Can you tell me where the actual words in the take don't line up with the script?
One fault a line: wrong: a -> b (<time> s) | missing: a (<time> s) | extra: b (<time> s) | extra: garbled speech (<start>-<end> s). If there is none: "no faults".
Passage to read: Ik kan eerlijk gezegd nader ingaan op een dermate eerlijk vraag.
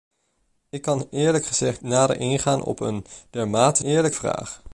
no faults